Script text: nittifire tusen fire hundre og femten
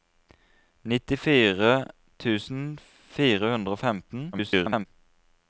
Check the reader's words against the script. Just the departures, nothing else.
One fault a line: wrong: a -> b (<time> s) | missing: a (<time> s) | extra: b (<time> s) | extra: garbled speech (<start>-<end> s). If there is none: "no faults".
extra: garbled speech (4.3-4.9 s)